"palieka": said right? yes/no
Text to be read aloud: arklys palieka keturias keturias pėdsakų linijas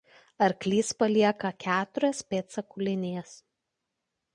yes